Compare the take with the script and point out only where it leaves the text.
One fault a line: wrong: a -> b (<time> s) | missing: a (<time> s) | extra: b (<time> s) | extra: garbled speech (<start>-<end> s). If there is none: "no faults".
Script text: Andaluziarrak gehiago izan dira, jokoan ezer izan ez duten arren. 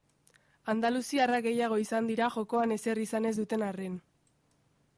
no faults